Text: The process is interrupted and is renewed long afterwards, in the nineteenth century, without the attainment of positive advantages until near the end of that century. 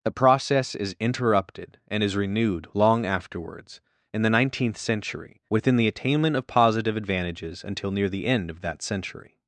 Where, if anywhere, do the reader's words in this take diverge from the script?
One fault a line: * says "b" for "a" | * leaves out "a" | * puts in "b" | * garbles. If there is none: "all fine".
* says "within" for "without"